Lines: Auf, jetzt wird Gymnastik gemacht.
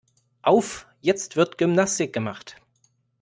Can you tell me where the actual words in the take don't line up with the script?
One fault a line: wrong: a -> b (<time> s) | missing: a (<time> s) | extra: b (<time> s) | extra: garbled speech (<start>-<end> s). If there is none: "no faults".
no faults